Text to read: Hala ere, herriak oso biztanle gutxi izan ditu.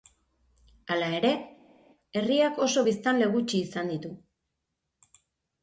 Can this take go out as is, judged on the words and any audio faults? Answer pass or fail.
pass